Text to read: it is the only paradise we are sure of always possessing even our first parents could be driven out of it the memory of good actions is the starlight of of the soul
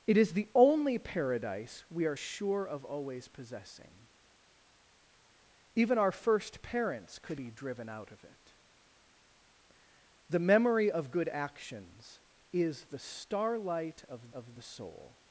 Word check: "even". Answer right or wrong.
right